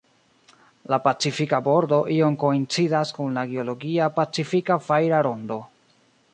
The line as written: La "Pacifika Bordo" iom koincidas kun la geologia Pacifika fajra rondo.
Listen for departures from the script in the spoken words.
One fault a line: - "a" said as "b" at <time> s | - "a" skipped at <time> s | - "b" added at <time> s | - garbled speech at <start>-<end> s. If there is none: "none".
none